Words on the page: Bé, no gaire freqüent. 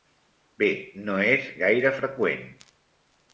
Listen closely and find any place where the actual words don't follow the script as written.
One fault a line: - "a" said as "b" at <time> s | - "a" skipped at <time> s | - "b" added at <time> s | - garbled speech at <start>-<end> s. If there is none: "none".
- "és" added at 1.3 s